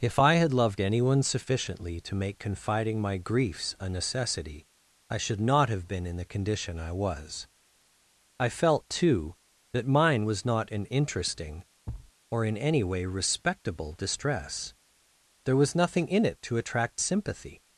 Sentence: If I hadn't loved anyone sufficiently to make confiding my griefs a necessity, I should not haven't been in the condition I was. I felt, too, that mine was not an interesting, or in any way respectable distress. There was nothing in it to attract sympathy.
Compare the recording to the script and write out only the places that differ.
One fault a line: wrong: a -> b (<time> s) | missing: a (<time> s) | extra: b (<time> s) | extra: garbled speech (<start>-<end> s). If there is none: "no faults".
wrong: hadn't -> had (0.3 s)
wrong: haven't -> have (5.7 s)